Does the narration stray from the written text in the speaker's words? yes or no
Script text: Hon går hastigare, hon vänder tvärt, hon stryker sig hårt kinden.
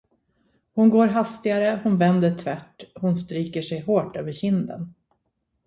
yes